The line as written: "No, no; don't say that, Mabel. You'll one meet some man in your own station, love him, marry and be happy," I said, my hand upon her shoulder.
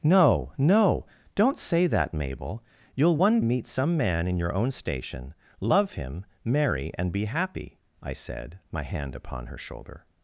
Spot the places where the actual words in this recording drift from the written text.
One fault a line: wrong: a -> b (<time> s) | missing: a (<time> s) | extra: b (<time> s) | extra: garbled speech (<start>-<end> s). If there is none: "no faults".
no faults